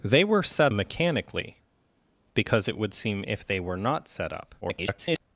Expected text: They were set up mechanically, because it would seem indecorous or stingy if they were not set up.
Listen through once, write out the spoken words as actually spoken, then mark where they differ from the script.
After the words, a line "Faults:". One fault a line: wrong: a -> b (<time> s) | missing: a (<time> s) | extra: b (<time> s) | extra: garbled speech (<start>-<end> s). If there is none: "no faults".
They were set mechanically, because it would seem if they were not set up. [garbled]
Faults:
missing: up (0.7 s)
missing: indecorous or stingy (3.2 s)
extra: garbled speech (4.6-5.2 s)